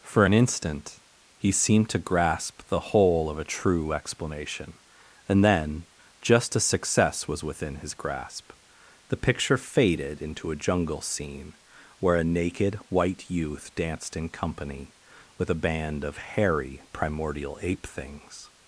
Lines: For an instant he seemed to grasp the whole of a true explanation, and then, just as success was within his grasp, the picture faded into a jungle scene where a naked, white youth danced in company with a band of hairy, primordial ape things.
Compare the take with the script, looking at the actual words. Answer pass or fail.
pass